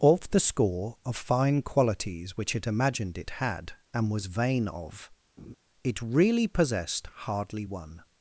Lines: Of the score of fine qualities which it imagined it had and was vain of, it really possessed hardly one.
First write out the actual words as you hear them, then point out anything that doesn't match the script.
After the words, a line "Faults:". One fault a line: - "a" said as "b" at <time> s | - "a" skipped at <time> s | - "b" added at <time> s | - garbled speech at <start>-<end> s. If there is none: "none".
Of the score of fine qualities which it imagined it had and was vain of, it really possessed hardly one.
Faults:
none